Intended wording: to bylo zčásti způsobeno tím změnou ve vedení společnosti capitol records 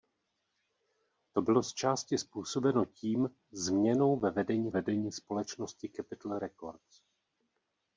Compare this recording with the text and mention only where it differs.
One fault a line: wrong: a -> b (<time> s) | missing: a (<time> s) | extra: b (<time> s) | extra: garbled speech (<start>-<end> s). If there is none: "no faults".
extra: vedení (4.7 s)